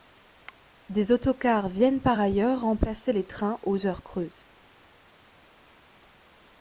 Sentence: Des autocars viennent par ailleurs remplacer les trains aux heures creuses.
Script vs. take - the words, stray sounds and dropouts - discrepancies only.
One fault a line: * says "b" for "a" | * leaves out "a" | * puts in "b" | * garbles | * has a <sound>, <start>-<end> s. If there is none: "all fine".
all fine